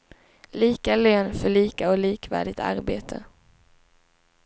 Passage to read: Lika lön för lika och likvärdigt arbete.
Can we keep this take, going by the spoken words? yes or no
yes